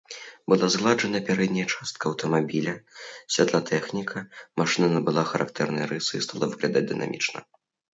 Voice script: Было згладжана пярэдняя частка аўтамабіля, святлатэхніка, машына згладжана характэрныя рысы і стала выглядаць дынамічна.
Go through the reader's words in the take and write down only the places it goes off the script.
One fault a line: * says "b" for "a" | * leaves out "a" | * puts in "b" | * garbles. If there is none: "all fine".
* says "Была" for "Было"
* says "набыла" for "згладжана"